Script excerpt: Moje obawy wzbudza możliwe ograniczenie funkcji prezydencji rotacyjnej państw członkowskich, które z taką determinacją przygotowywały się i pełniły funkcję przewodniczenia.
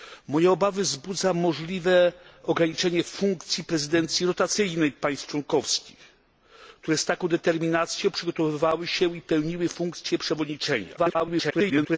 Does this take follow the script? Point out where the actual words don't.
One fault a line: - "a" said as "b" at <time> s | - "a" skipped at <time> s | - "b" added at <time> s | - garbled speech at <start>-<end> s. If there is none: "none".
- garbled speech at 11.0-12.0 s